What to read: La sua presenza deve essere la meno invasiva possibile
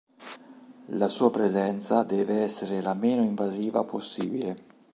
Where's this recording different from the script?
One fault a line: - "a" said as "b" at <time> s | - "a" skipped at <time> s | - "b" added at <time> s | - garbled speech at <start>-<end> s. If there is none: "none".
none